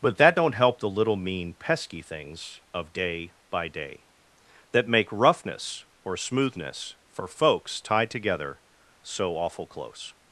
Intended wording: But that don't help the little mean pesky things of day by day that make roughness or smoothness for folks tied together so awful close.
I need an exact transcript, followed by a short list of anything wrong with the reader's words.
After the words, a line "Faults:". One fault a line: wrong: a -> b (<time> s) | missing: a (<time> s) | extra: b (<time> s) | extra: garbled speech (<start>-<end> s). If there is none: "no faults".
But that don't help the little mean pesky things of day by day that make roughness or smoothness for folks tied together so awful close.
Faults:
no faults